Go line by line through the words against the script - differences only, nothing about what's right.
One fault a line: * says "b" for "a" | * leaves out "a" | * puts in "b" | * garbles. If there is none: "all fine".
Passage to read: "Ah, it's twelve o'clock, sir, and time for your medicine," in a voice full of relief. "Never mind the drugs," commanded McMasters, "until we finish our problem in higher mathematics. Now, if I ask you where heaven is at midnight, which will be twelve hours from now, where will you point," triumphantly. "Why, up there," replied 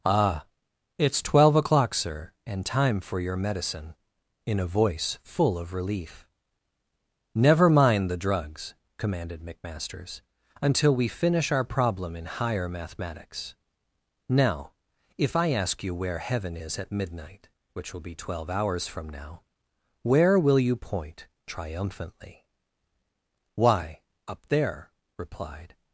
all fine